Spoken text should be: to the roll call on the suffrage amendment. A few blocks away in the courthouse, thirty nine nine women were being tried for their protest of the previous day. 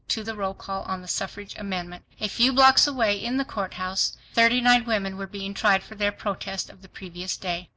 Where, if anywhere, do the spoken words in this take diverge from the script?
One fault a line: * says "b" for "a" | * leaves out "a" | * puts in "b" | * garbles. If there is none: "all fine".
* leaves out "nine"